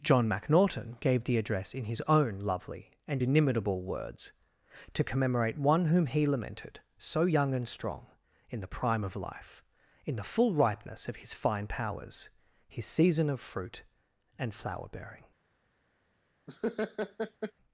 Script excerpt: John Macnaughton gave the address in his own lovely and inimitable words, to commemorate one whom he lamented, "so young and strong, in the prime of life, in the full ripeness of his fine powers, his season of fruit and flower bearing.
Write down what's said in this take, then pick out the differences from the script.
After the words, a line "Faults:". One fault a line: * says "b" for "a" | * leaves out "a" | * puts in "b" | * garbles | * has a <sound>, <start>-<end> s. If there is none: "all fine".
John Macnaughton gave the address in his own lovely and inimitable words, to commemorate one whom he lamented, "so young and strong, in the prime of life, in the full ripeness of his fine powers, his season of fruit and flower bearing.
Faults:
* has a laugh, 16.5-17.5 s